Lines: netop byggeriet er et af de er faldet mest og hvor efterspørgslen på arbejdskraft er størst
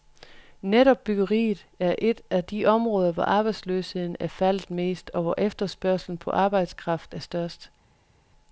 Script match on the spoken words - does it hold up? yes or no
no